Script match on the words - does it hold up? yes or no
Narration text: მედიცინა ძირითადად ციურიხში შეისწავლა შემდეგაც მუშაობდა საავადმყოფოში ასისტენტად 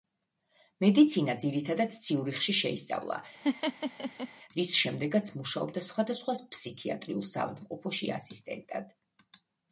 no